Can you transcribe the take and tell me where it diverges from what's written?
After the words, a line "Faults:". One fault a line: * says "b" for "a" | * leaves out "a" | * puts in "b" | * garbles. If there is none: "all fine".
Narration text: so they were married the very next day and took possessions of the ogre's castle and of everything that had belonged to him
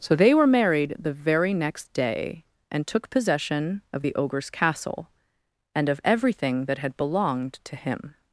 so they were married the very next day and took possession of the ogre's castle and of everything that had belonged to him
Faults:
* says "possession" for "possessions"